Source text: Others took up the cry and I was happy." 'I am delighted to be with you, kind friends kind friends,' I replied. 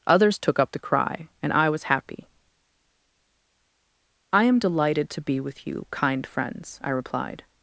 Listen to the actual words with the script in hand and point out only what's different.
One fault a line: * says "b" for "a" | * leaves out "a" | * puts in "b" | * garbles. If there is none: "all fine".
* leaves out "kind friends"